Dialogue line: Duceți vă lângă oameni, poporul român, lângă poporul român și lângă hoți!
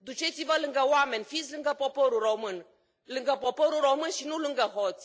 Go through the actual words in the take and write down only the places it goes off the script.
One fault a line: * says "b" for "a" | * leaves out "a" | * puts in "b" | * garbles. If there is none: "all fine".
* puts in "fiți lângă"
* puts in "nu"